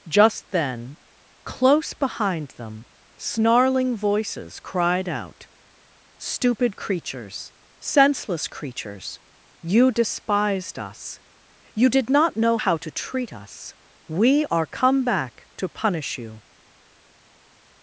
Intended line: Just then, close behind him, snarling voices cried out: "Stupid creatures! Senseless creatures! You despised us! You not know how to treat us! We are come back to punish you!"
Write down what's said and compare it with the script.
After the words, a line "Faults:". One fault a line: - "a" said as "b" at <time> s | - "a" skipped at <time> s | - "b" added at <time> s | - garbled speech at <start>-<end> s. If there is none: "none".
Just then, close behind them, snarling voices cried out: "Stupid creatures! Senseless creatures! You despised us! You did not know how to treat us! We are come back to punish you!"
Faults:
- "him" said as "them" at 2.6 s
- "did" added at 11.9 s